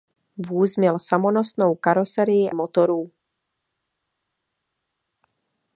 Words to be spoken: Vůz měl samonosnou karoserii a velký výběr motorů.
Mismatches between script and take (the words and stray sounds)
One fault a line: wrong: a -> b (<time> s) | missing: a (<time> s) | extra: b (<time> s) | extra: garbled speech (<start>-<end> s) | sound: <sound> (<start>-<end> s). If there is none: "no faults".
missing: a velký výběr (2.5 s)